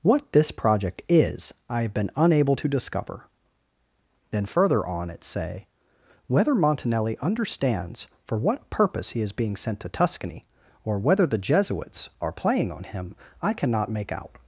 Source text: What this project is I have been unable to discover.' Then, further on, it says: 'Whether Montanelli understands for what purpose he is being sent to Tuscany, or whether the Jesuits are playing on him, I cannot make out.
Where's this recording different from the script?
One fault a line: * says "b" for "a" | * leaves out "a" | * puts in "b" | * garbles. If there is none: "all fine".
* says "say" for "says"